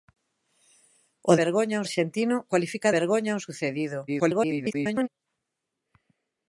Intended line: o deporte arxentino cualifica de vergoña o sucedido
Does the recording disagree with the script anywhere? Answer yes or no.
yes